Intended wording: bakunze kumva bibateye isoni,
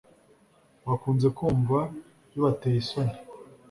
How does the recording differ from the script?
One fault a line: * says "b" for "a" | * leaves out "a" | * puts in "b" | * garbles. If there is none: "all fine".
all fine